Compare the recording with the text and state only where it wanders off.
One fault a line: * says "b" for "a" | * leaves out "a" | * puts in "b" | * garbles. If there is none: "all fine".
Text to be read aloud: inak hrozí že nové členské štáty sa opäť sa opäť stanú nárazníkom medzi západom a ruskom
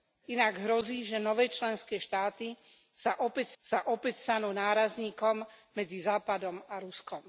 all fine